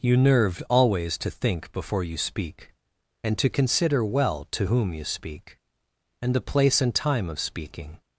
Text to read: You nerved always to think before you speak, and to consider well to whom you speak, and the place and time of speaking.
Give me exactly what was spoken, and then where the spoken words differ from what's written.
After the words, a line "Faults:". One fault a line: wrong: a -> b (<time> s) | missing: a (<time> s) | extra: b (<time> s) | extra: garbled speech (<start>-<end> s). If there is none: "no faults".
You nerved always to think before you speak, and to consider well to whom you speak, and the place and time of speaking.
Faults:
no faults